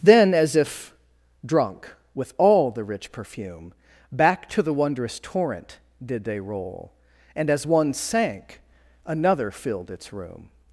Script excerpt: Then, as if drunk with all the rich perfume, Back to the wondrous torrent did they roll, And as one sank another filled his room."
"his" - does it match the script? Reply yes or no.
no